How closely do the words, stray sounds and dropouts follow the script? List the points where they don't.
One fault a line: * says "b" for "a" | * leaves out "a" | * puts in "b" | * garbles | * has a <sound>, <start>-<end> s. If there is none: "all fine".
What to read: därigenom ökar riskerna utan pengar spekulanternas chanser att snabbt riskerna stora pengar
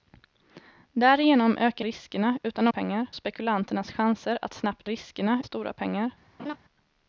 * has a laugh, 6.4-6.6 s